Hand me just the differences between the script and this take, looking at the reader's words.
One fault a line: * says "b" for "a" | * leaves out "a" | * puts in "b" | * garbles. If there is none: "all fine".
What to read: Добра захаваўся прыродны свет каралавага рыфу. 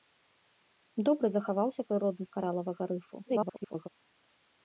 * leaves out "свет"
* garbles